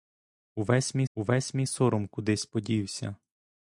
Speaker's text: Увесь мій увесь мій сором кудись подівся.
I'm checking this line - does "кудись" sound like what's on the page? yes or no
yes